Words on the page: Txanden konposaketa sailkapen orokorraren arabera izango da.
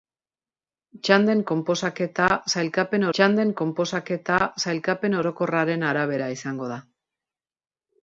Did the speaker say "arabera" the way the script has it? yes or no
yes